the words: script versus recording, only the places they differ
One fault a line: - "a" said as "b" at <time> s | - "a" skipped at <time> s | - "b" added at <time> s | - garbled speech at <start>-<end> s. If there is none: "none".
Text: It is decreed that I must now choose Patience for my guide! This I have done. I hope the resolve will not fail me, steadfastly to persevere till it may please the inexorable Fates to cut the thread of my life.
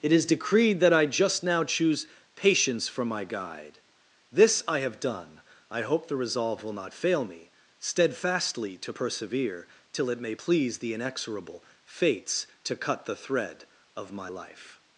- "must" said as "just" at 1.1 s